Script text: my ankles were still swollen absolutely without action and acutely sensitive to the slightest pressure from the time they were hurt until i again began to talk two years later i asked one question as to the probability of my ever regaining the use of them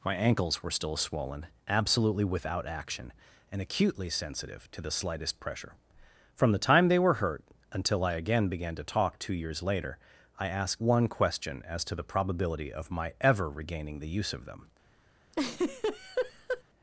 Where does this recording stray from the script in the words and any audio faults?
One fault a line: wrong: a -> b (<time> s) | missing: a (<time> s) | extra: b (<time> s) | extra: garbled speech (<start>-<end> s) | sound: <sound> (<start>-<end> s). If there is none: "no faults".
sound: laugh (15.3-16.6 s)